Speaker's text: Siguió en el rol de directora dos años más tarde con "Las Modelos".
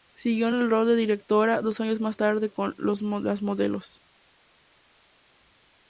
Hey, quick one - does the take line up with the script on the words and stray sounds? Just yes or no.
yes